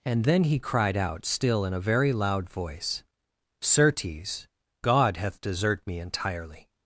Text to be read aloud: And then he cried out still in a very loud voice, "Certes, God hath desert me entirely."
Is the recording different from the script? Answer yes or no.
no